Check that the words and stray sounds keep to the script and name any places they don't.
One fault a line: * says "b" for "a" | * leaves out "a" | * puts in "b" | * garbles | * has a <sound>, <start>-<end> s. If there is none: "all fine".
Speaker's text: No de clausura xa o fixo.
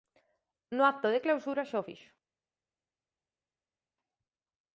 * puts in "acto"